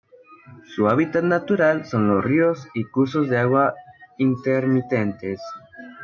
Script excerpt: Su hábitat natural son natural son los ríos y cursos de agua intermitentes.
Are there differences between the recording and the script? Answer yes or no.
yes